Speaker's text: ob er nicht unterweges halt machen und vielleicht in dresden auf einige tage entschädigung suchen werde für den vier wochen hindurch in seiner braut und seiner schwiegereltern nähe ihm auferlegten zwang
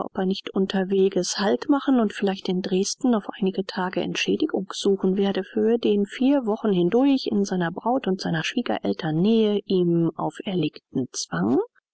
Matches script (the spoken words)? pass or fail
pass